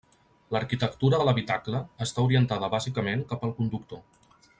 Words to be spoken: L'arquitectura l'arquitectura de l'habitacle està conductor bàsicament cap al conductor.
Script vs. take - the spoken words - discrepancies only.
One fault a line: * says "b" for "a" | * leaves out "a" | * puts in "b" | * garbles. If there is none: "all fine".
* leaves out "l'arquitectura"
* says "orientada" for "conductor"